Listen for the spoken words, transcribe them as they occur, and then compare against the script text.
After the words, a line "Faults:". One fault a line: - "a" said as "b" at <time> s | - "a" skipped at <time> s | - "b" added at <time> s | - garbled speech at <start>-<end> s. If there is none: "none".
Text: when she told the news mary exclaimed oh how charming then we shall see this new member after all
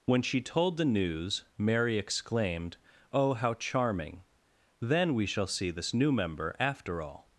when she told the news mary exclaimed oh how charming then we shall see this new member after all
Faults:
none